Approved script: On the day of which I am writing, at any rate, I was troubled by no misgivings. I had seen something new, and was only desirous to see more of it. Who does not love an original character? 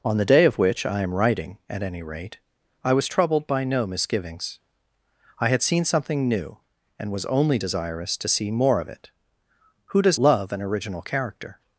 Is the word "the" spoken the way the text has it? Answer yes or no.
yes